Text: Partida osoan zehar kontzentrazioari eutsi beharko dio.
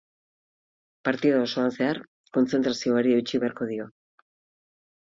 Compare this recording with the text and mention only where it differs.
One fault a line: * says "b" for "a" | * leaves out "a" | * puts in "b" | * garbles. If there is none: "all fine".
all fine